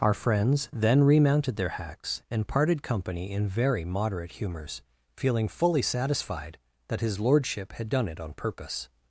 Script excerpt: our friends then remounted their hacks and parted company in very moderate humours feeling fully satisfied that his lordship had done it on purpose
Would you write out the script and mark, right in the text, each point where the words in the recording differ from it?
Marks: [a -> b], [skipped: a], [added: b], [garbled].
our friends then remounted their hacks and parted company in very moderate humours feeling fully satisfied that his lordship had done it on purpose